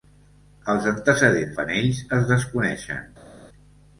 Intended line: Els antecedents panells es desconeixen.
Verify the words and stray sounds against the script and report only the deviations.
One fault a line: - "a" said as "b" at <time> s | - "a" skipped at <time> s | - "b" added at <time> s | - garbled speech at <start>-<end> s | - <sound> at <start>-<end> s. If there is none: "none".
none